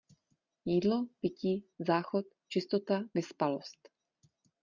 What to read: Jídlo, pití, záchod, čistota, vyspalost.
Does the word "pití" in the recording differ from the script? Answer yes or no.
no